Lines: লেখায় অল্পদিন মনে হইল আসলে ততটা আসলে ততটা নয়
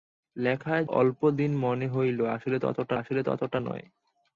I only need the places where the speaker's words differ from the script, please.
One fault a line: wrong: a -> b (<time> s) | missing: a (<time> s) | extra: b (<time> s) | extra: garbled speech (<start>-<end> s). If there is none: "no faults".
no faults